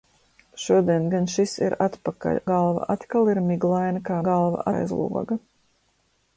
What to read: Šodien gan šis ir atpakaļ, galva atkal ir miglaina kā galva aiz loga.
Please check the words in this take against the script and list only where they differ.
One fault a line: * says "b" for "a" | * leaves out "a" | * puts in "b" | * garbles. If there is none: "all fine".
all fine